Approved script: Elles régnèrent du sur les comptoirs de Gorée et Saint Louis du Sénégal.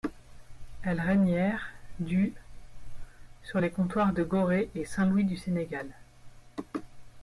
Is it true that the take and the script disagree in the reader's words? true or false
false